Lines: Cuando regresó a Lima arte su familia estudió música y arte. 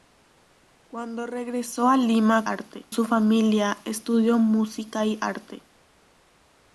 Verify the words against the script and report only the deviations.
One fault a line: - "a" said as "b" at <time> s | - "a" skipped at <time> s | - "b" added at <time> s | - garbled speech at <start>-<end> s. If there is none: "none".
none